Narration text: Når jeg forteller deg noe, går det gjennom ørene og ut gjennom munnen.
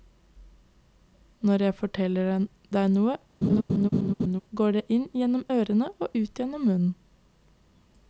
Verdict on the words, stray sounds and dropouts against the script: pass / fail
fail